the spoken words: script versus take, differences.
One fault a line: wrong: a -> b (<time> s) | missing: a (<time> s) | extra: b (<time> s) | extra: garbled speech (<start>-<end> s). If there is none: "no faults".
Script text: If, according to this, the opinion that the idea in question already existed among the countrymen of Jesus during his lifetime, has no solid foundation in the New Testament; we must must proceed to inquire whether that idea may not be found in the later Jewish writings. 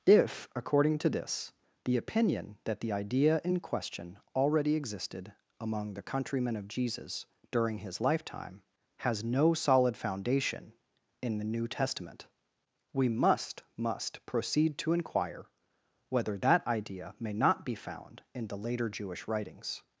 no faults